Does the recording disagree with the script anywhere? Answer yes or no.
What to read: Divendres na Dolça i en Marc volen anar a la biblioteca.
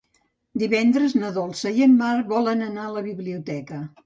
no